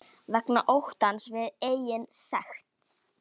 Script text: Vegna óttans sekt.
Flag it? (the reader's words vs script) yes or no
yes